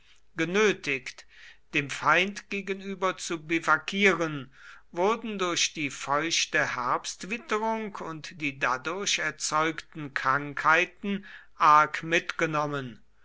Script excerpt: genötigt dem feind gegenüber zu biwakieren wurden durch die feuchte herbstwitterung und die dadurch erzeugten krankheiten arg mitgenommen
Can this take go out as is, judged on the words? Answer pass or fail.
pass